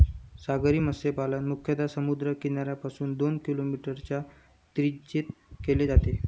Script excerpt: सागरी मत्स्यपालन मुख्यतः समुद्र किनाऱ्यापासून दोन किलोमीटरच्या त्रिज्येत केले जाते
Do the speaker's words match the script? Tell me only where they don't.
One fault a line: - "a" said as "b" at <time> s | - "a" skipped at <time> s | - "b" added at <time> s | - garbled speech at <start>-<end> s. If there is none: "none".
none